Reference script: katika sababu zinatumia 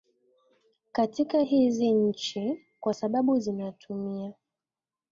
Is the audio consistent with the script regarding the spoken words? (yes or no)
no